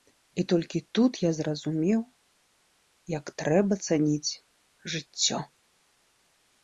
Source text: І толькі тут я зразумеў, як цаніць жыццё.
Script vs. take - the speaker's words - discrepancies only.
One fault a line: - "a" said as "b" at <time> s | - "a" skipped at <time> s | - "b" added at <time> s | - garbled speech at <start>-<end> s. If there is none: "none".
- "трэба" added at 3.4 s